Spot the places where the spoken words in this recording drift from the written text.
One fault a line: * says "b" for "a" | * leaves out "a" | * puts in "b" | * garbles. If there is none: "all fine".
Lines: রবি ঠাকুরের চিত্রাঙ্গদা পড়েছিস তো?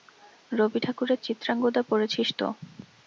all fine